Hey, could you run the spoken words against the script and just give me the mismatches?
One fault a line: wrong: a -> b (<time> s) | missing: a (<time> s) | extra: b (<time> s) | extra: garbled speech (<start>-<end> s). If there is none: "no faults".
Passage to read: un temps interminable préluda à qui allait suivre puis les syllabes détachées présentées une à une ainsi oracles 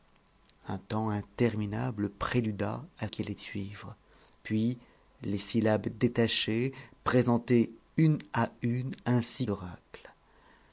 no faults